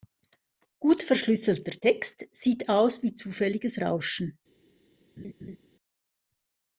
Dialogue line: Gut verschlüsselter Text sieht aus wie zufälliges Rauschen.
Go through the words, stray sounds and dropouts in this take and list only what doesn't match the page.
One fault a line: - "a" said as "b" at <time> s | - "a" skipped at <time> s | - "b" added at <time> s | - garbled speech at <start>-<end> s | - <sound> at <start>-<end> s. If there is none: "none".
- laugh at 5.2-5.6 s